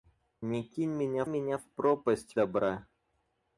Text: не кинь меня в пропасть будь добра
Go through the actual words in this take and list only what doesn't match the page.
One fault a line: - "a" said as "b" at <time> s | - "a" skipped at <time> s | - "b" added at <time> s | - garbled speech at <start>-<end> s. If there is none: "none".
- "меня" added at 1.2 s
- "будь" skipped at 2.4 s